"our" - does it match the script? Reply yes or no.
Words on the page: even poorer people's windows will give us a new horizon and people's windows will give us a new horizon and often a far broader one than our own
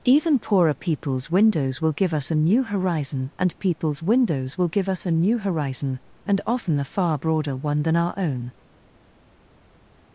yes